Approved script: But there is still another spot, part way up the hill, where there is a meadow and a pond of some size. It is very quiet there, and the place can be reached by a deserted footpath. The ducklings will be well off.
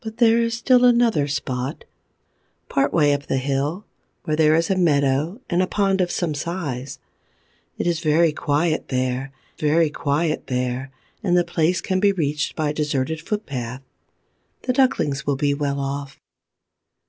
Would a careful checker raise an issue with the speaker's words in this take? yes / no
yes